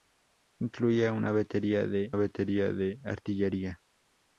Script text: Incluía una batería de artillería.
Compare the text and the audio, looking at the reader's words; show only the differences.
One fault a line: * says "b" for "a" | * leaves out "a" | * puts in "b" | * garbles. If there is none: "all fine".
* puts in "batería de"